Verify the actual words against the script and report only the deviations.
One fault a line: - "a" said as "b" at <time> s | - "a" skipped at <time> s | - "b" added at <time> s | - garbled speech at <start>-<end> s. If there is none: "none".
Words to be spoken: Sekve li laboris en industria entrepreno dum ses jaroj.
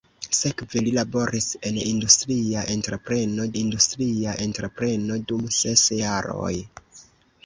- "industria entrepreno" added at 3.5 s